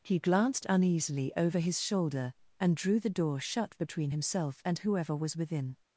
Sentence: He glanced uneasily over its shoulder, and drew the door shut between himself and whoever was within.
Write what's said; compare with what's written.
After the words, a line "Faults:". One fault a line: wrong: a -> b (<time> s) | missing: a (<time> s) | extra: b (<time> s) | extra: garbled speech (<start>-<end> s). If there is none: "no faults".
He glanced uneasily over his shoulder, and drew the door shut between himself and whoever was within.
Faults:
wrong: its -> his (1.6 s)